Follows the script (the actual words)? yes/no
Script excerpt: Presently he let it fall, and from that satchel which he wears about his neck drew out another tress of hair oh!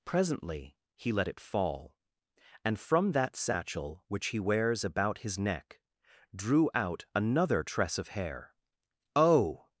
yes